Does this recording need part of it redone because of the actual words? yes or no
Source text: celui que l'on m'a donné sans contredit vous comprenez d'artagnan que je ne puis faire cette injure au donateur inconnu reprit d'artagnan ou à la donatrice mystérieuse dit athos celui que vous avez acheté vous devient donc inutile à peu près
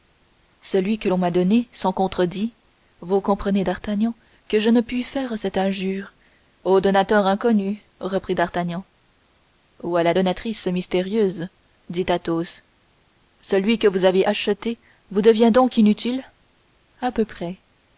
no